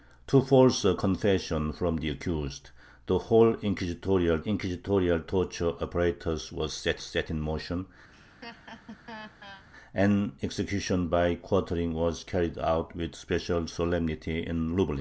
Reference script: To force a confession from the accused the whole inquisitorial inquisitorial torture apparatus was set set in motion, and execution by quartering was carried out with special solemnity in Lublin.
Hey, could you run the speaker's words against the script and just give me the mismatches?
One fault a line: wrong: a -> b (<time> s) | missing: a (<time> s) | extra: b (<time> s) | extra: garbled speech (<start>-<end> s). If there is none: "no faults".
no faults